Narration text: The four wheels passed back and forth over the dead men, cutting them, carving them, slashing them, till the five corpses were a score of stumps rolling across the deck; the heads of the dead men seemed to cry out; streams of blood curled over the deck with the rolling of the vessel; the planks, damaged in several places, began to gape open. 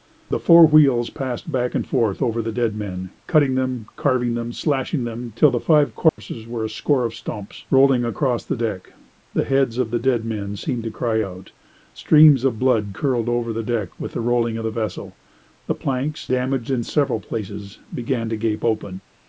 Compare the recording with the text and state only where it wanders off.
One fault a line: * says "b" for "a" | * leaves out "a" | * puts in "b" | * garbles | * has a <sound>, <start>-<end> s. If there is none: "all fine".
* has a dropout, 6.1-6.2 s